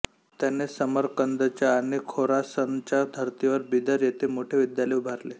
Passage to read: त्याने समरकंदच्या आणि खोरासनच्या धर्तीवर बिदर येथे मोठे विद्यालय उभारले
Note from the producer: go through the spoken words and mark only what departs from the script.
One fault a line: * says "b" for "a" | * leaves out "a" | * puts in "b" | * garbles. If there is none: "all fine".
all fine